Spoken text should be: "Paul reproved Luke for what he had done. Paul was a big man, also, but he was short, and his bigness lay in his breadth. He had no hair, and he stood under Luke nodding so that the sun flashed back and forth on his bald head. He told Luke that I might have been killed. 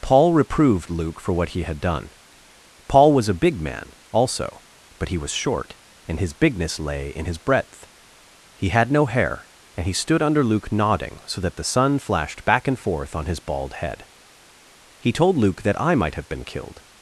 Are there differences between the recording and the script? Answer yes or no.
no